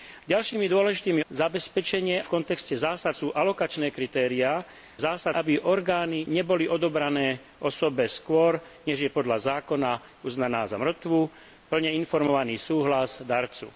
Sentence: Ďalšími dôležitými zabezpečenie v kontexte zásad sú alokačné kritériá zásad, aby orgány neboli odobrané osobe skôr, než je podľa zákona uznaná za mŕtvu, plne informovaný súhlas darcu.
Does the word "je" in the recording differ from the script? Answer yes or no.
no